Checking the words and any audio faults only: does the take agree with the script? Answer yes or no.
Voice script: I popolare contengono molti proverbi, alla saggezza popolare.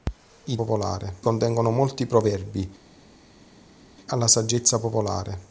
yes